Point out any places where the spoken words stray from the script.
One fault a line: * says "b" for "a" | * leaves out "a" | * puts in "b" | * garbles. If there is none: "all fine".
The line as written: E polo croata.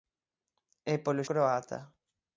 all fine